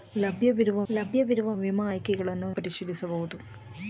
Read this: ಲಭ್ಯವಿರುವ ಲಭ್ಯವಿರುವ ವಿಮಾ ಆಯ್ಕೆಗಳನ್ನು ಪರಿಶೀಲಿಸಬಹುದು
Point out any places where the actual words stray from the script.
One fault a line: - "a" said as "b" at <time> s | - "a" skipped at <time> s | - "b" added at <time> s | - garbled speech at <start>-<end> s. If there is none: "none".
none